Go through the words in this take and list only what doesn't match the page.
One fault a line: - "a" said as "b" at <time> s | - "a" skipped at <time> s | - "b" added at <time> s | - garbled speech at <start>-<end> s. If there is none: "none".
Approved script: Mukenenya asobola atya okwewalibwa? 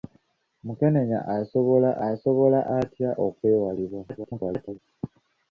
- "asobola" added at 2.1 s
- garbled speech at 4.1-4.8 s